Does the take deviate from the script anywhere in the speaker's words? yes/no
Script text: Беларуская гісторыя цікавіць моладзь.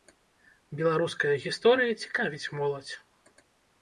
no